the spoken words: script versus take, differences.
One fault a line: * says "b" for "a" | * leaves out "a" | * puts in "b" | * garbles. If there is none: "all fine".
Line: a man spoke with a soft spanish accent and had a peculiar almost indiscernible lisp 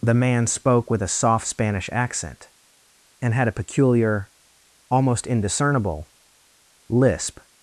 * says "the" for "a"